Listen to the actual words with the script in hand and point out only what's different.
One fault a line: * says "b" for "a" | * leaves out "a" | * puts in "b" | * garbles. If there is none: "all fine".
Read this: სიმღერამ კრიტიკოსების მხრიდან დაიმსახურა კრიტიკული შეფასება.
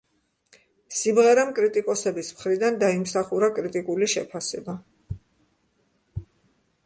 all fine